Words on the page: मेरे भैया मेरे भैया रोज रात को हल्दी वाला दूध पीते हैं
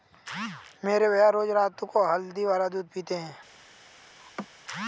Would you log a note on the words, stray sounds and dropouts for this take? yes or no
yes